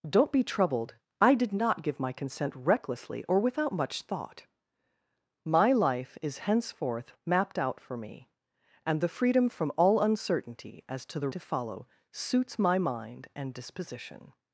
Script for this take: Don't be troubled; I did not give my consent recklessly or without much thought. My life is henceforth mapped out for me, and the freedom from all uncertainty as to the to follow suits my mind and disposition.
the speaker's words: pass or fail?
pass